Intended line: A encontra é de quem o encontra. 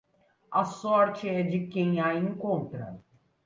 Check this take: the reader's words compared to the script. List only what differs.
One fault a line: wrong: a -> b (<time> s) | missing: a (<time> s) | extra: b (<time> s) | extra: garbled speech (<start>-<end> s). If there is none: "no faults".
wrong: encontra -> sorte (0.6 s)
wrong: o -> a (2.0 s)